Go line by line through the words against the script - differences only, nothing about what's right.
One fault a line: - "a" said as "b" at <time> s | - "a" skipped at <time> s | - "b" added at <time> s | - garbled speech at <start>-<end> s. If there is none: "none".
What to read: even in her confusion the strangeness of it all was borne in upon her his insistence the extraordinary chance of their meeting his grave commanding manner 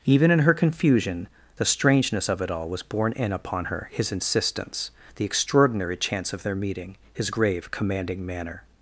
none